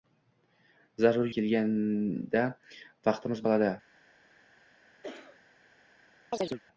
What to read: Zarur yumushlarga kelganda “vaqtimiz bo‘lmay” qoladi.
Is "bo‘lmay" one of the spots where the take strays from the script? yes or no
yes